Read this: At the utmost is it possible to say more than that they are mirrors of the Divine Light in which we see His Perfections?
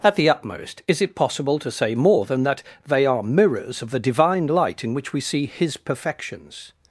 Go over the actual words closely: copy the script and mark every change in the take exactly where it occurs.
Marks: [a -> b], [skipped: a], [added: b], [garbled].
At the utmost is it possible to say more than that they are mirrors of the Divine Light in which we see His Perfections?